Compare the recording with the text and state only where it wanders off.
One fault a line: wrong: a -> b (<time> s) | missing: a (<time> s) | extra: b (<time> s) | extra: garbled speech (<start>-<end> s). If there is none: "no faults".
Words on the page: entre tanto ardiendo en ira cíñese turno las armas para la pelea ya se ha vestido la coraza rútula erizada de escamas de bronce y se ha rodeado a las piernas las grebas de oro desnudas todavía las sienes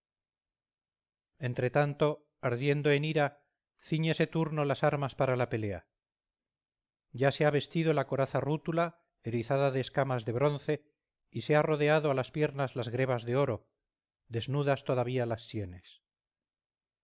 no faults